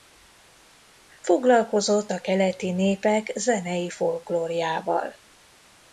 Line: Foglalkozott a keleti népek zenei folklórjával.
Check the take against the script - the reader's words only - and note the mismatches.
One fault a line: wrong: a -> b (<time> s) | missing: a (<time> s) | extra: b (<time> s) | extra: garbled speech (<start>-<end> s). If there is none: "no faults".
no faults